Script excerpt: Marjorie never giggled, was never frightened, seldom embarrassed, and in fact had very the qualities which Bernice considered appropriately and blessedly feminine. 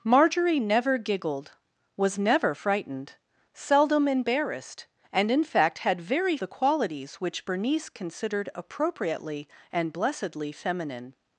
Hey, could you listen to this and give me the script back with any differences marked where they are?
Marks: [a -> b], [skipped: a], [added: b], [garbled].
Marjorie never giggled, was never frightened, seldom embarrassed, and in fact had very the qualities which Bernice considered appropriately and blessedly feminine.